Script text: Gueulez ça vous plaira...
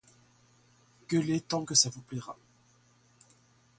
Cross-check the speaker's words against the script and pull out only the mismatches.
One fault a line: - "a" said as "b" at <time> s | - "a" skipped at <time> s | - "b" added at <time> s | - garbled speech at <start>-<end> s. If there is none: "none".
- "tant que" added at 1.4 s